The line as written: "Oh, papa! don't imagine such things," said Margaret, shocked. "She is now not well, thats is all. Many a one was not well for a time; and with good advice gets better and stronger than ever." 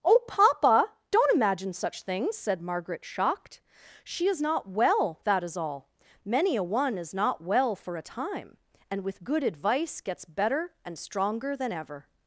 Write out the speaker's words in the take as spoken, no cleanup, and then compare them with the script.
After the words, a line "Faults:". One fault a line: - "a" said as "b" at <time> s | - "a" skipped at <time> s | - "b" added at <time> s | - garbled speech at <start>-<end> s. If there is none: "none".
"Oh, papa! don't imagine such things," said Margaret, shocked. "She is not well, that is all. Many a one is not well for a time; and with good advice gets better and stronger than ever."
Faults:
- "now" skipped at 4.4 s
- "thats" said as "that" at 5.2 s
- "was" said as "is" at 7.0 s